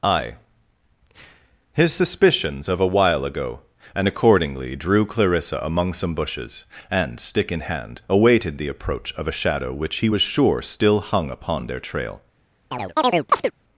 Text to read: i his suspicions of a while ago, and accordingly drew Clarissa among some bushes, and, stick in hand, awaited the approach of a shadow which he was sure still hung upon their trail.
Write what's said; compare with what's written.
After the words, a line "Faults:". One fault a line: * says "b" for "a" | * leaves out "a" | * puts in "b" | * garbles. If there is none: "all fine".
i his suspicions of a while ago, and accordingly drew Clarissa among some bushes, and, stick in hand, awaited the approach of a shadow which he was sure still hung upon their trail.
Faults:
all fine